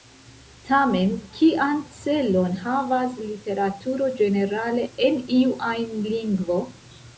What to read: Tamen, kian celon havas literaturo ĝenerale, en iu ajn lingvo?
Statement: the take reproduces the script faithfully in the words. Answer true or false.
true